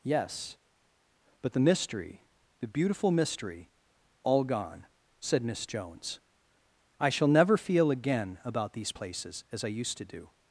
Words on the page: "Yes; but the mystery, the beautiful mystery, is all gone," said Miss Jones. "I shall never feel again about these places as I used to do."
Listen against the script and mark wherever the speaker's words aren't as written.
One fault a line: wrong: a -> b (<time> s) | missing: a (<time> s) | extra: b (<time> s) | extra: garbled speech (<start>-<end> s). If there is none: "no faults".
missing: is (3.7 s)